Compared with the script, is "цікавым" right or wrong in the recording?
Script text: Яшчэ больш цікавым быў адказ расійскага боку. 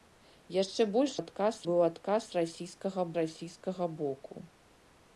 wrong